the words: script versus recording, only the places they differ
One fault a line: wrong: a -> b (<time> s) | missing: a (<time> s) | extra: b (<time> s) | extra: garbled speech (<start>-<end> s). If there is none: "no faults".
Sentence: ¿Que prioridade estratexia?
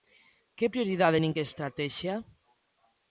extra: nin que (1.2 s)